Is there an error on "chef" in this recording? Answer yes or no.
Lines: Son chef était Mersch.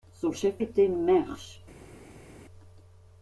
no